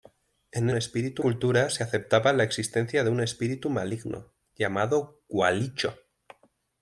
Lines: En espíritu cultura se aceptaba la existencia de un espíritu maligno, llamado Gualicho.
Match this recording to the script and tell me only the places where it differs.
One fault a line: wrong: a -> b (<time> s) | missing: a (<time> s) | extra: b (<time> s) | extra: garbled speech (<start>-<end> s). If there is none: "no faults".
no faults